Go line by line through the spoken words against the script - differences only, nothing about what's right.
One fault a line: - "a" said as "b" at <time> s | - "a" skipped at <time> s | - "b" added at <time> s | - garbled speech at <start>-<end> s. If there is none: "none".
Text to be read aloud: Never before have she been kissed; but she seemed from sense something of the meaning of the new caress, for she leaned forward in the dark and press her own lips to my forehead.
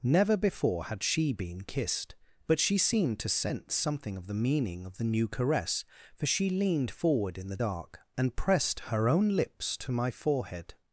- "have" said as "had" at 0.8 s
- "from" said as "to" at 3.2 s
- "press" said as "pressed" at 8.3 s